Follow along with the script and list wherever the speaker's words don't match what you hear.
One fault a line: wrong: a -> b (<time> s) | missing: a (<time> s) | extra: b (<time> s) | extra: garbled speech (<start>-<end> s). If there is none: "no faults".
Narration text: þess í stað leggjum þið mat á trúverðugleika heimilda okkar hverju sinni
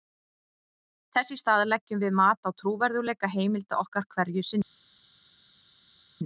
wrong: þið -> við (2.1 s)